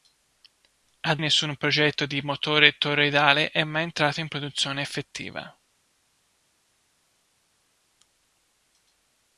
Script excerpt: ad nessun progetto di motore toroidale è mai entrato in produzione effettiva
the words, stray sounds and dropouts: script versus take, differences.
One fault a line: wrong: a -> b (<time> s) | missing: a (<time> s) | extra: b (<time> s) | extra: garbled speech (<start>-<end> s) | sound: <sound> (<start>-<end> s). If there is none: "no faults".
no faults